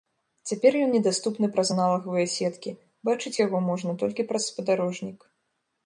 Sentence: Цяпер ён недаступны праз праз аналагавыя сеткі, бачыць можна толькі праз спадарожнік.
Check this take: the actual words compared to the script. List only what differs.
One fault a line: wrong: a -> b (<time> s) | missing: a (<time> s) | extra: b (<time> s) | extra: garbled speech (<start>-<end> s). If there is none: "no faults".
missing: праз (1.7 s)
extra: яго (3.5 s)